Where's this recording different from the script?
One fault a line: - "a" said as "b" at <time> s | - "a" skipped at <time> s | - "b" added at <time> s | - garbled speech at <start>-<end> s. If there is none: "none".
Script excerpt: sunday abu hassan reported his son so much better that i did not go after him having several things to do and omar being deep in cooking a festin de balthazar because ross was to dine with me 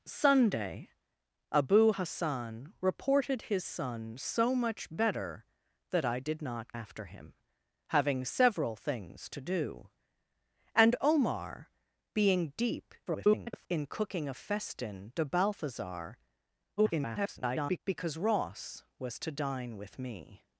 - "go" skipped at 6.7 s
- garbled speech at 13.1-13.7 s
- garbled speech at 16.8-17.8 s